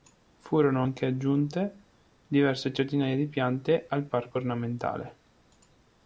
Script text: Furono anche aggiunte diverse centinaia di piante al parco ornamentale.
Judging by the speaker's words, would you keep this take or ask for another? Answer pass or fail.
pass